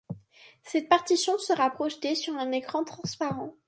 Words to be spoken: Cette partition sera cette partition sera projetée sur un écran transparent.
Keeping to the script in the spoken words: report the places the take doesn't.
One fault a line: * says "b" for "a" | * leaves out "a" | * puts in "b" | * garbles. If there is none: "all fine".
* leaves out "cette partition sera"